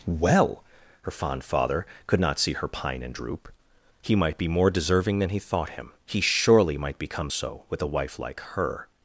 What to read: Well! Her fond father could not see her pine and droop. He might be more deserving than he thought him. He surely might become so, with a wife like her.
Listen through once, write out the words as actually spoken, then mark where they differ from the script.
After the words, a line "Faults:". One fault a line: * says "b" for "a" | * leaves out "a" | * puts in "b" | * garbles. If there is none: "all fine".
Well! Her fond father could not see her pine and droop. He might be more deserving than he thought him. He surely might become so, with a wife like her.
Faults:
all fine